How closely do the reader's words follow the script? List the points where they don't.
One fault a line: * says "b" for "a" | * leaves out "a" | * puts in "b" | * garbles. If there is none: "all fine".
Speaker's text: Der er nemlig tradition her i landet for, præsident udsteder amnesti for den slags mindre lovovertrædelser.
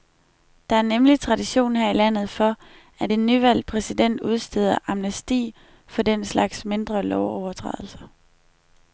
* puts in "at en nyvalgt"